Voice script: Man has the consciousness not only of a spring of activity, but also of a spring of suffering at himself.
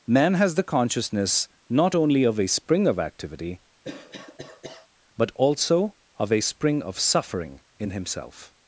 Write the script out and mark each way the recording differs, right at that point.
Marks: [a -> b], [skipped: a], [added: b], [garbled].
Man has the consciousness not only of a spring of activity, but also of a spring of suffering [at -> in] himself.